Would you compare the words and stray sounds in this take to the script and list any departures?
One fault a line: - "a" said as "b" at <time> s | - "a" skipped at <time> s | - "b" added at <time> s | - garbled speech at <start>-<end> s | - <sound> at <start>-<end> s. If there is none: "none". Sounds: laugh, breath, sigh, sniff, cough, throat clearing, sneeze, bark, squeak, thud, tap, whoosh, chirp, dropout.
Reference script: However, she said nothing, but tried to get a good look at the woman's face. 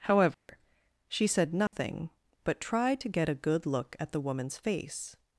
- dropout at 0.3-0.5 s
- dropout at 1.7-1.7 s